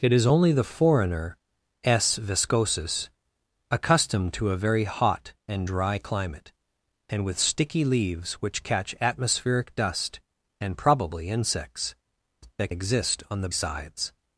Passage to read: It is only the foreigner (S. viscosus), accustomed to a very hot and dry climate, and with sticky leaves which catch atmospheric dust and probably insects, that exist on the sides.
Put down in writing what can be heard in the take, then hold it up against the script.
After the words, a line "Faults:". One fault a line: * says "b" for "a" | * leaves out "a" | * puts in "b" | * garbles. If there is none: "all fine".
It is only the foreigner (S. viscosus), accustomed to a very hot and dry climate, and with sticky leaves which catch atmospheric dust and probably insects, that exist on the sides.
Faults:
all fine